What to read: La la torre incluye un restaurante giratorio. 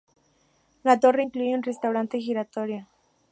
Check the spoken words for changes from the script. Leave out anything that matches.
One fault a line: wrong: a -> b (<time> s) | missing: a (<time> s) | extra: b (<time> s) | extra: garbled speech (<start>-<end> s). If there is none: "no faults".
missing: la (1.0 s)